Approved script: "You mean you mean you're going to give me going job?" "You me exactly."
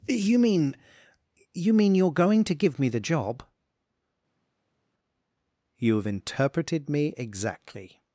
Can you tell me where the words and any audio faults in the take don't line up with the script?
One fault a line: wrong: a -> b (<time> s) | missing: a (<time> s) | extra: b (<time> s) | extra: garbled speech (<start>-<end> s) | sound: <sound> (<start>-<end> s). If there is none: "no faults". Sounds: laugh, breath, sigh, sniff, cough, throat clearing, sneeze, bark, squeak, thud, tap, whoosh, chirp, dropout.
wrong: going -> the (2.9 s)
extra: have interpreted (6.0 s)